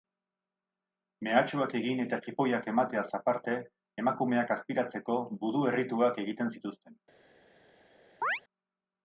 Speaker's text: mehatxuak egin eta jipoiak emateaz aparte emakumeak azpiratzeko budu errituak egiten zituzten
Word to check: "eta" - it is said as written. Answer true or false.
true